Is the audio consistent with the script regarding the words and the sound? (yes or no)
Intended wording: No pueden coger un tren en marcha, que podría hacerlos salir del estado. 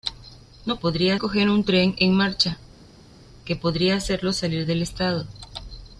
no